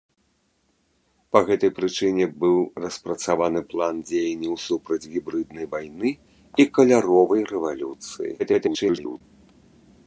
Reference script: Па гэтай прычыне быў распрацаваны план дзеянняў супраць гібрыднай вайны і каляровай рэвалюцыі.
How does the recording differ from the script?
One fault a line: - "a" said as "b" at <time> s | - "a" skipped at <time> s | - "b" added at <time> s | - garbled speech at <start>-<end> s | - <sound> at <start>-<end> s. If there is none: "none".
- garbled speech at 8.4-9.2 s